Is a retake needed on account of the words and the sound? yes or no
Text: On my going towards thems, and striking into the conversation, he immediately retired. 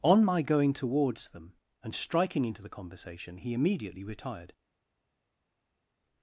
yes